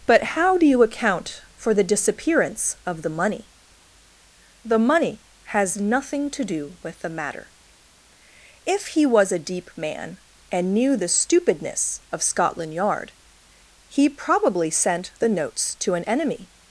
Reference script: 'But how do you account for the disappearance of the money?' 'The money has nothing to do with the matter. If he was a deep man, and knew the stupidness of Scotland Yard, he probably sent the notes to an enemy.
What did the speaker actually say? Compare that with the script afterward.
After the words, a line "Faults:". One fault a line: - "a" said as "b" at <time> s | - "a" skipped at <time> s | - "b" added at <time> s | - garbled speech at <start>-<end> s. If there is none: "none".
'But how do you account for the disappearance of the money?' 'The money has nothing to do with the matter. If he was a deep man, and knew the stupidness of Scotland Yard, he probably sent the notes to an enemy.
Faults:
none